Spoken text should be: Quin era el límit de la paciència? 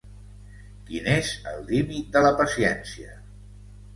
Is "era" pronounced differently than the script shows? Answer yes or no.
yes